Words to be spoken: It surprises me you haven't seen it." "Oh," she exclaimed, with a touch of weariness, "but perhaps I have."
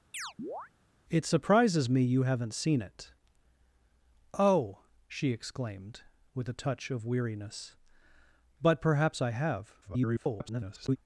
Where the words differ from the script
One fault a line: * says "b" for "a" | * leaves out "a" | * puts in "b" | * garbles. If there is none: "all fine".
* garbles